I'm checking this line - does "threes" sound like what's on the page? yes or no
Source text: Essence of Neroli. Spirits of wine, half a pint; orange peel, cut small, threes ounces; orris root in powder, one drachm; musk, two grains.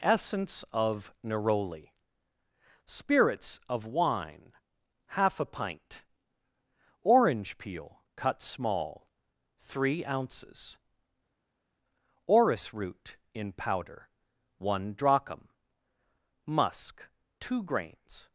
no